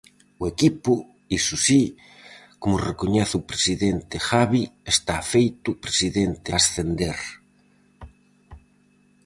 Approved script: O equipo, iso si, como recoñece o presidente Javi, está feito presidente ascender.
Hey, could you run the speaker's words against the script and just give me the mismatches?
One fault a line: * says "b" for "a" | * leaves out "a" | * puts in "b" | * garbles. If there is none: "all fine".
all fine